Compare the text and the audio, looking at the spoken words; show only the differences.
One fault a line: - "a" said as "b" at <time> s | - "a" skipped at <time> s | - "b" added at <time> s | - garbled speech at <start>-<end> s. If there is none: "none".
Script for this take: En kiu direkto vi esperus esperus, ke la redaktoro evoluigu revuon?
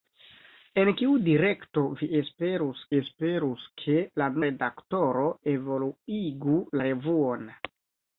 none